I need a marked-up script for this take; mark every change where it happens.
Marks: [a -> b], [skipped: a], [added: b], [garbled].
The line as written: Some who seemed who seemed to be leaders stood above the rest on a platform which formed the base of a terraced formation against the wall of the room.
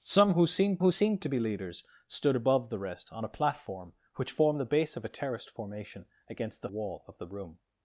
Some who seemed who seemed to be leaders stood above the rest on a platform which formed the base of a terraced formation against the wall of the room.